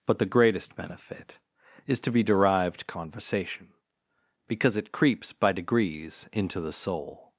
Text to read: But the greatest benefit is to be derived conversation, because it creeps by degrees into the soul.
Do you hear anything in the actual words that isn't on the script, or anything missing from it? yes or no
no